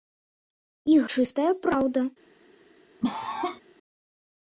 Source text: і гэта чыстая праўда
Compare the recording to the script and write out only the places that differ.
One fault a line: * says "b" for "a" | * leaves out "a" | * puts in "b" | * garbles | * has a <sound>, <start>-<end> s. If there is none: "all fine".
* leaves out "гэта"
* has a cough, 3.0-3.6 s